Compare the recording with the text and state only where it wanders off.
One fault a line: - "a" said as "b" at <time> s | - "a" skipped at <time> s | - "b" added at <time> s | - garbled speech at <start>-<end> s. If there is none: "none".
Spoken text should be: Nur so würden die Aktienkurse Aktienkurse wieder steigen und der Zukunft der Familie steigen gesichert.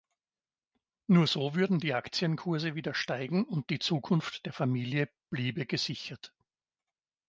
- "Aktienkurse" skipped at 2.7 s
- "der" said as "die" at 3.7 s
- "steigen" said as "bliebe" at 5.3 s